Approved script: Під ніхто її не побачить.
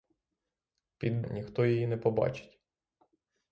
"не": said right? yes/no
yes